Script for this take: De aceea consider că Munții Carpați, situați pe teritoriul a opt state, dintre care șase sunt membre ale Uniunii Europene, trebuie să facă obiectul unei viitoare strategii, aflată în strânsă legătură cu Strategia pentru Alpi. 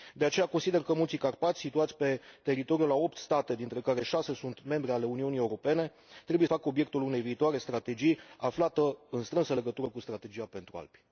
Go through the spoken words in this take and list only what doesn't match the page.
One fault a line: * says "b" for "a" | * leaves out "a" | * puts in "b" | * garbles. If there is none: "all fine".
* leaves out "să"